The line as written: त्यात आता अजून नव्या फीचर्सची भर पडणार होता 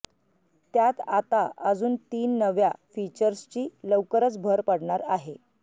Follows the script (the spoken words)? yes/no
no